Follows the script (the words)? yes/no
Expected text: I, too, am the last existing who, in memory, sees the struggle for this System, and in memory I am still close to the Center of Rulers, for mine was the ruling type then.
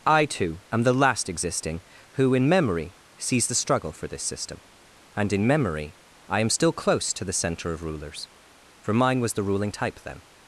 yes